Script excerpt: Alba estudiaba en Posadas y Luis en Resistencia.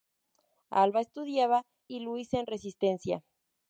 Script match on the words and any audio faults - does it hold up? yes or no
no